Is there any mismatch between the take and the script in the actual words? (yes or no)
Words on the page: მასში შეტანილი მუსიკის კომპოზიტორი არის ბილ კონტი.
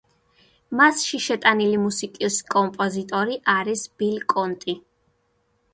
no